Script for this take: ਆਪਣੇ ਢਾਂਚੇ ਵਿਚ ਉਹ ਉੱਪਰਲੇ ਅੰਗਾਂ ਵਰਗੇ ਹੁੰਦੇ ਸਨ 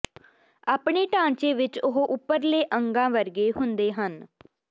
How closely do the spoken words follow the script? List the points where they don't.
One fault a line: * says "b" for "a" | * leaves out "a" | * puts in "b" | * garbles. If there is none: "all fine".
* says "ਹਨ" for "ਸਨ"